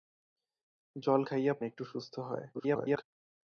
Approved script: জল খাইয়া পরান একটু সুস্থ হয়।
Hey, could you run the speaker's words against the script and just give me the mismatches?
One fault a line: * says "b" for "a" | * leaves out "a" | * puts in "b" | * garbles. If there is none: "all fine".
* leaves out "পরান"
* garbles